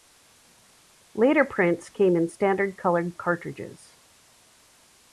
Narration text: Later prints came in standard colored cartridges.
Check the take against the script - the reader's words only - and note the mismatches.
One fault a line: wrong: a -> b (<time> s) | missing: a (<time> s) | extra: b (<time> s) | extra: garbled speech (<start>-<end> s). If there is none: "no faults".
no faults